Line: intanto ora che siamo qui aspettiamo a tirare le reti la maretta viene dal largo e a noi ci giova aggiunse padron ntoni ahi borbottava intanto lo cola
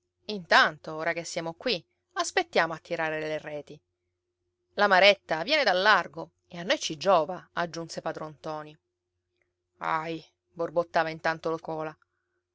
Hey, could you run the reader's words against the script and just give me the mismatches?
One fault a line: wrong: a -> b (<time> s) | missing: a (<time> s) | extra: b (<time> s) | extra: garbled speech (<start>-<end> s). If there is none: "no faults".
no faults